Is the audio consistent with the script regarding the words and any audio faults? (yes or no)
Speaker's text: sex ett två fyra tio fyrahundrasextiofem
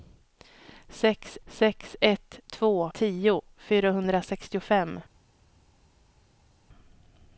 no